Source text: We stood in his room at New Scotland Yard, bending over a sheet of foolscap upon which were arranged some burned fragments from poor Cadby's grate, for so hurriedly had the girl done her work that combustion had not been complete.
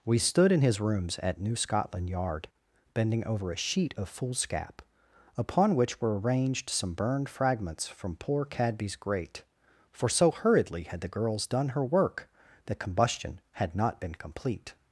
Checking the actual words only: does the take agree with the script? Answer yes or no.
no